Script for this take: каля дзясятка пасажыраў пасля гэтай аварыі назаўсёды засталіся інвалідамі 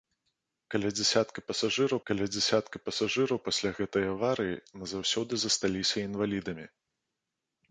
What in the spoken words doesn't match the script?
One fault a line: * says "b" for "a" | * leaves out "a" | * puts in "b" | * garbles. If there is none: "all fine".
* puts in "каля дзясятка пасажыраў"